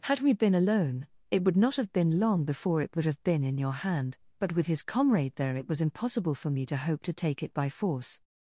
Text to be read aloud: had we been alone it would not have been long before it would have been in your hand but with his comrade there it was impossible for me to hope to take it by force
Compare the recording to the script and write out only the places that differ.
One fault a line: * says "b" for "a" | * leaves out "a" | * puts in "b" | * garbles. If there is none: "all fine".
all fine